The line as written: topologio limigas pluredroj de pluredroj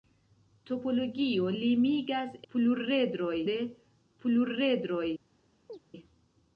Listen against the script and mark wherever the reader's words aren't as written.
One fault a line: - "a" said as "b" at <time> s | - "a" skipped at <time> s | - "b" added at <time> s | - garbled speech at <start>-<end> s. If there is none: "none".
none